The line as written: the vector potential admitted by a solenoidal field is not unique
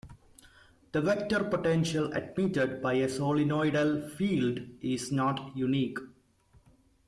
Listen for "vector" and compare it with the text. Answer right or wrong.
right